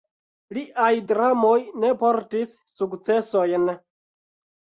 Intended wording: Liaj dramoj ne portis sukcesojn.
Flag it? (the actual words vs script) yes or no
no